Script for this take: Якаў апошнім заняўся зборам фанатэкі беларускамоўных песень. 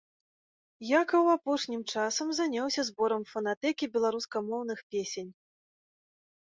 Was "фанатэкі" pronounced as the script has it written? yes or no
yes